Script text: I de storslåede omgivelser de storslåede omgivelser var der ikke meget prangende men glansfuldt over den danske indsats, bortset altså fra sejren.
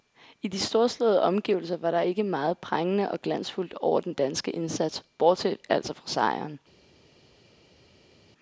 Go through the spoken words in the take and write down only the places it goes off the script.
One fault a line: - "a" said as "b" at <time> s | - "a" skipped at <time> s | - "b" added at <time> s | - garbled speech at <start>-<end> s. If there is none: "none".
- "de storslåede omgivelser" skipped at 1.8 s
- "men" said as "og" at 3.1 s